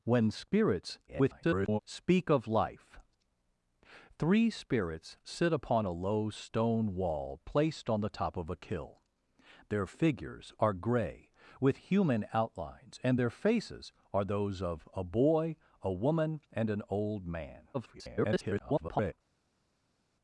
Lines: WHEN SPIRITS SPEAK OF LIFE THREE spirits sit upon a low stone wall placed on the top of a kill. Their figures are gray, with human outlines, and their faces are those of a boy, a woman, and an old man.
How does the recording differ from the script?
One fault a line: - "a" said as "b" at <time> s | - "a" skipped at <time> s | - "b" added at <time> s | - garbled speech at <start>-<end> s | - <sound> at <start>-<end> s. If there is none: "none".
- garbled speech at 1.1-1.8 s
- garbled speech at 17.7-19.1 s